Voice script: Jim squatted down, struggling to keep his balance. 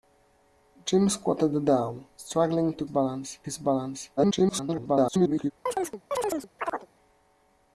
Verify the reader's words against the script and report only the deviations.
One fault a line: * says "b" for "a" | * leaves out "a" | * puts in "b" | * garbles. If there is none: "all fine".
* says "balance" for "keep"
* garbles